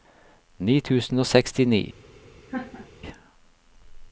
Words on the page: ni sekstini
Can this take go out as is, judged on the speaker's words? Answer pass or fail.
fail